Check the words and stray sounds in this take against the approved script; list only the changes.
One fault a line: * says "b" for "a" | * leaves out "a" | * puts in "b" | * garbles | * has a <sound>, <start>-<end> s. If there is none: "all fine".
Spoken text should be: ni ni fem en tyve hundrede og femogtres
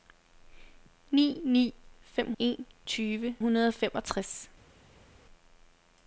all fine